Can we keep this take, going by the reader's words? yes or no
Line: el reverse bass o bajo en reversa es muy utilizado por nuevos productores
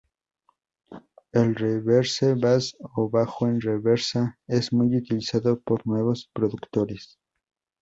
yes